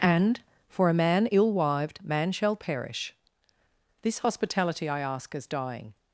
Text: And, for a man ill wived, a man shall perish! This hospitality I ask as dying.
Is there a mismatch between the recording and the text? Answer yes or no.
yes